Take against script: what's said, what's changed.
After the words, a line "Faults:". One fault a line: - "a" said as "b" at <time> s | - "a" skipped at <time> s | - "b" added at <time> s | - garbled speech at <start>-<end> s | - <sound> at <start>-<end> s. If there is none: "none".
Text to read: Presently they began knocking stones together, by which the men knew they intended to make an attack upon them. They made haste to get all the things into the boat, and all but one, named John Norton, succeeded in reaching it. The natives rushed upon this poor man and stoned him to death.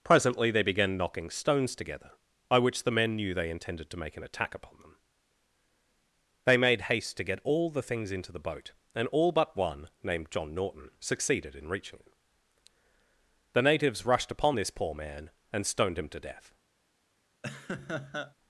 Presently they began knocking stones together, by which the men knew they intended to make an attack upon them. They made haste to get all the things into the boat, and all but one, named John Norton, succeeded in reaching it. The natives rushed upon this poor man and stoned him to death.
Faults:
- laugh at 17.4-18.3 s